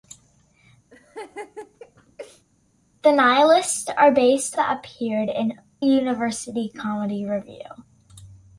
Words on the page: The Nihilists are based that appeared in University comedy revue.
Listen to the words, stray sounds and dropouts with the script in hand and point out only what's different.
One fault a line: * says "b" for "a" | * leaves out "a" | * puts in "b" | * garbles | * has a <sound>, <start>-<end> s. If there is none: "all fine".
* has a laugh, 0.9-2.4 s